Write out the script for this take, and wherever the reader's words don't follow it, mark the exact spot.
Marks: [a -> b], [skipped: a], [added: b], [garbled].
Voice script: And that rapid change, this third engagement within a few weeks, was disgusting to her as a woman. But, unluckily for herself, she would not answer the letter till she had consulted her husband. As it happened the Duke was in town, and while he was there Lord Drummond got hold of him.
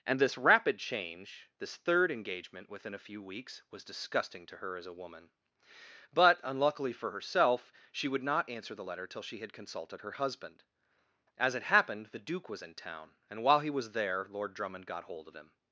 And [that -> this] rapid change, this third engagement within a few weeks, was disgusting to her as a woman. But, unluckily for herself, she would not answer the letter till she had consulted her husband. As it happened the Duke was in town, and while he was there Lord Drummond got hold of him.